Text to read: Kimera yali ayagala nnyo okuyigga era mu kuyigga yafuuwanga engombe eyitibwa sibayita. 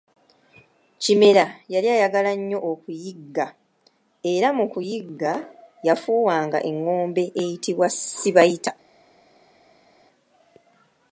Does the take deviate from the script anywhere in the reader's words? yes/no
no